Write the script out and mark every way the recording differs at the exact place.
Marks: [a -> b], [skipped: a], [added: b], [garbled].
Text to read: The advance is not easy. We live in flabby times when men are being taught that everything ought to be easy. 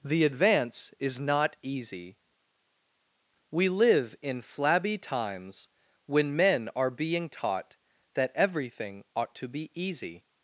The advance is not easy. We live in flabby times when men are being taught that everything ought to be easy.